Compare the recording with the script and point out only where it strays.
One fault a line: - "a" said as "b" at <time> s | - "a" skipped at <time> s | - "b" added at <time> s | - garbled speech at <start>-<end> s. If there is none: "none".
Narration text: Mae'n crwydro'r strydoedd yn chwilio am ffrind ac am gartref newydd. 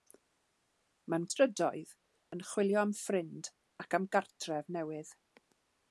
- "crwydro'r" skipped at 1.3 s